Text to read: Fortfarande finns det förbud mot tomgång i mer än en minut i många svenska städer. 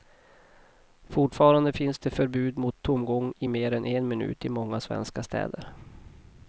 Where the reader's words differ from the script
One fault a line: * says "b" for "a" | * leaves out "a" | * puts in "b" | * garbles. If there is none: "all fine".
all fine